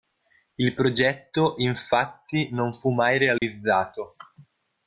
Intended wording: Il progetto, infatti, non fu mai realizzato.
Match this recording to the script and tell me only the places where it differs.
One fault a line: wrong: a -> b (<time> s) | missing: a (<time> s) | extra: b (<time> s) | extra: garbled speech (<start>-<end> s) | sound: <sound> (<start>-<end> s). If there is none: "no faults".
sound: dropout (3.4-3.4 s)